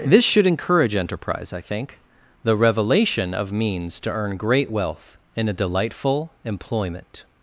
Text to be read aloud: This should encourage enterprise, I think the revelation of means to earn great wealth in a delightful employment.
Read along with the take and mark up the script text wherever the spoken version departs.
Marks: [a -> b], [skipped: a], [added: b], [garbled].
This should encourage enterprise, I think the revelation of means to earn great wealth in a delightful employment.